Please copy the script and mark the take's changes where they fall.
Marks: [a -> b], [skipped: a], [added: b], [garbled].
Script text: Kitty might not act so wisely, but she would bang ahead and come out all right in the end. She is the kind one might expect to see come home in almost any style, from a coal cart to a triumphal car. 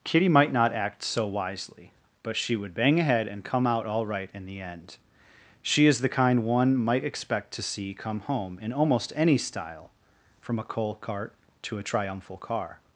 Kitty might not act so wisely, but she would bang ahead and come out all right in the end. She is the kind one might expect to see come home in almost any style, from a coal cart to a triumphal car.